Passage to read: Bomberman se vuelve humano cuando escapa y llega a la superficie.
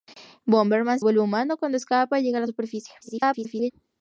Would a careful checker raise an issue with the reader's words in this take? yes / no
yes